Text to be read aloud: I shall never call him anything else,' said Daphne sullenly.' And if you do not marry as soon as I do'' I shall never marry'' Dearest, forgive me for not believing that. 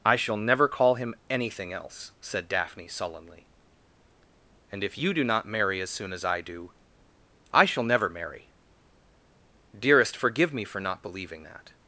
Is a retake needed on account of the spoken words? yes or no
no